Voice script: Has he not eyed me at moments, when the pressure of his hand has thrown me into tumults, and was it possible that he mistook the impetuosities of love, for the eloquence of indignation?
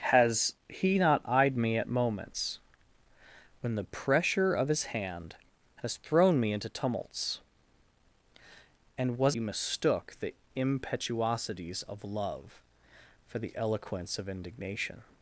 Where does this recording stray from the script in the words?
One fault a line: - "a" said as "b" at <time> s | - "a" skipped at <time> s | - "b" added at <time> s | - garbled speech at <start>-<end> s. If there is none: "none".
- "it possible that" skipped at 9.4 s